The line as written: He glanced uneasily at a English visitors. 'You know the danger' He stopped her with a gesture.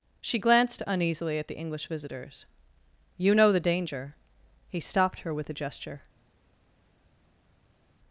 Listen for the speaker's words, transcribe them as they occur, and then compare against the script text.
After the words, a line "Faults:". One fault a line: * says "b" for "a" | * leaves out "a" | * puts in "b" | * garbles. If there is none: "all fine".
She glanced uneasily at the English visitors. 'You know the danger' He stopped her with a gesture.
Faults:
* says "She" for "He"
* says "the" for "a"